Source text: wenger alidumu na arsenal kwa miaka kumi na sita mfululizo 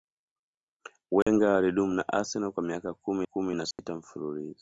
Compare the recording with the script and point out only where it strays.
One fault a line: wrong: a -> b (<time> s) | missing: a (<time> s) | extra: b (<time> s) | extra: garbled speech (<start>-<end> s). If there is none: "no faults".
extra: kumi (3.2 s)